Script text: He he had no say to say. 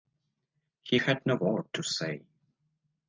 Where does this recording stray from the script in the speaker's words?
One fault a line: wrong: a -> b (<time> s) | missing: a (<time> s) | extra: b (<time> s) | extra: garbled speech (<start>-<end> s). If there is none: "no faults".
missing: he (1.0 s)
wrong: say -> word (1.3 s)